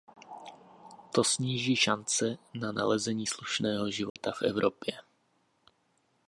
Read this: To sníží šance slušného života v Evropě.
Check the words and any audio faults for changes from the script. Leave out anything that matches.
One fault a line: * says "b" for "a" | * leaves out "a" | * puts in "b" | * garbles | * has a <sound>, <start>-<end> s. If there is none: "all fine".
* puts in "na nalezení"
* has a dropout, 4.1-4.2 s